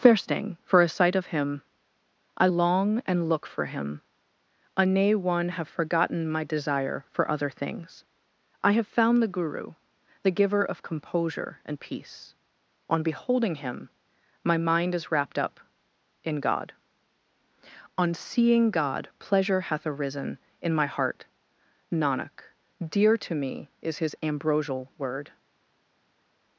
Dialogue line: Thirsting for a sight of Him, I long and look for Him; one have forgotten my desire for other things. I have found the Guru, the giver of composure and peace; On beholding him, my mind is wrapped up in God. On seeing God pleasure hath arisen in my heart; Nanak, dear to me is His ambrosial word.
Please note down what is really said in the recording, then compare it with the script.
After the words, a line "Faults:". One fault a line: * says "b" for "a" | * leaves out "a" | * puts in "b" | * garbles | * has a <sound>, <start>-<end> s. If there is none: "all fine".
Thirsting for a sight of Him, I long and look for Him; a nay one have forgotten my desire for other things. I have found the Guru, the giver of composure and peace; On beholding him, my mind is wrapped up in God. On seeing God pleasure hath arisen in my heart; Nanak, dear to me is His ambrosial word.
Faults:
* puts in "a nay"